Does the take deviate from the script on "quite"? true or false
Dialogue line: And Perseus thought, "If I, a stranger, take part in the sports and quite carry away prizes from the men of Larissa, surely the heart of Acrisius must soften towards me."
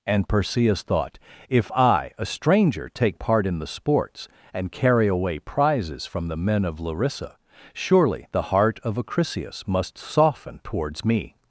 true